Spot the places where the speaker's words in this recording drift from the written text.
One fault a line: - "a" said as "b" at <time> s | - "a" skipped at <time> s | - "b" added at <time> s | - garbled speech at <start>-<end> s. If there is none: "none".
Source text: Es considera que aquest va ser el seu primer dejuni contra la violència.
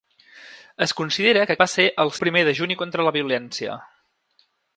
- "aquest" skipped at 1.6 s
- "seu" skipped at 2.1 s